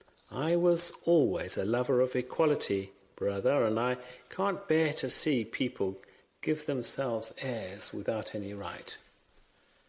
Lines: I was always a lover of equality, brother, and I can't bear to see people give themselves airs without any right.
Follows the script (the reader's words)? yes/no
yes